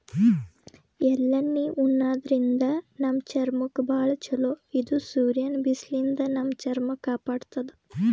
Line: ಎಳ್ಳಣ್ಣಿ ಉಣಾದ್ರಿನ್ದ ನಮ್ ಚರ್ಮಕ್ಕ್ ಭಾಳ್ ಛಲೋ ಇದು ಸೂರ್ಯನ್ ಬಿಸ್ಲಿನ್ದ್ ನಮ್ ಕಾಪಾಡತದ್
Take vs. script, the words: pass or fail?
fail